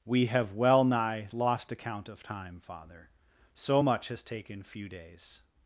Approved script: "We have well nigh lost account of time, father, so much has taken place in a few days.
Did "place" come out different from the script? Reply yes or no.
yes